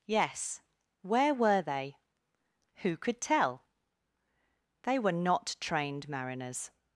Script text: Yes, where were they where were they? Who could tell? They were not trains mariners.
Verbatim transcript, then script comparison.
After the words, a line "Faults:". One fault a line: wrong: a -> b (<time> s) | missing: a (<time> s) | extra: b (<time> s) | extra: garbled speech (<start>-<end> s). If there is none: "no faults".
Yes, where were they? Who could tell? They were not trained mariners.
Faults:
missing: where were they (2.0 s)
wrong: trains -> trained (5.6 s)